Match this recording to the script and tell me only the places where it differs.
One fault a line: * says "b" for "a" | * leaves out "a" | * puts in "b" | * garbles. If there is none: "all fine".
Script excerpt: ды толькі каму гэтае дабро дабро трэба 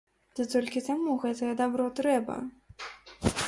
* leaves out "дабро"